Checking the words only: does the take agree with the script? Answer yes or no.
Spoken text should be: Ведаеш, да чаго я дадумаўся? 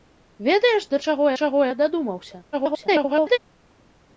no